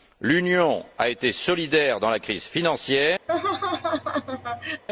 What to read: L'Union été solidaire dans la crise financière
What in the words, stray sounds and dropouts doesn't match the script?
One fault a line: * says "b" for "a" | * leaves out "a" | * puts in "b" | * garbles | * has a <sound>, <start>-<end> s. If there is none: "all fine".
* puts in "a"
* has a laugh, 3.3-4.8 s